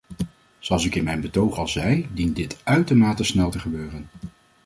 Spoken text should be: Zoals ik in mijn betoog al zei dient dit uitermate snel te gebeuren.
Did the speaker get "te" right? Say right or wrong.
right